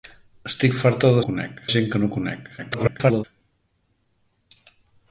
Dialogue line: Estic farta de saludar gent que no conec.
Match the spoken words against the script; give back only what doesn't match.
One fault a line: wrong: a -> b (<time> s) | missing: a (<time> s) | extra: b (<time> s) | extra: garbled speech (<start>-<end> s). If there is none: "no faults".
wrong: saludar -> conec (1.3 s)
extra: garbled speech (2.6-3.2 s)